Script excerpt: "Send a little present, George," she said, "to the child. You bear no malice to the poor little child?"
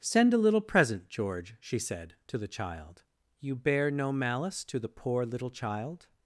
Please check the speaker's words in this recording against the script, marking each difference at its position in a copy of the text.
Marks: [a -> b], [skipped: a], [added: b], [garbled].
"Send a little present, George," she said, "to the child. You bear no malice to the poor little child?"